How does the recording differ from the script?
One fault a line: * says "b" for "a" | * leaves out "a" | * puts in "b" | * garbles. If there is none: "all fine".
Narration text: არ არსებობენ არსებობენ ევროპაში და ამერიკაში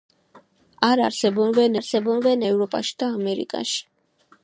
all fine